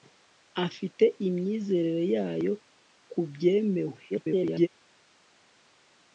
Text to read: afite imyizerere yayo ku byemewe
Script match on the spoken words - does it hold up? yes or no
no